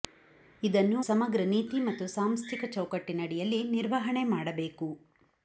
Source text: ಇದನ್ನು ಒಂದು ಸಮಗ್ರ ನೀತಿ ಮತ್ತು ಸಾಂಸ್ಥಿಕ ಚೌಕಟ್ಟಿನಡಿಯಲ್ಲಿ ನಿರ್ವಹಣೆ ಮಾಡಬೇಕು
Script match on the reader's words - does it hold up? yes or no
no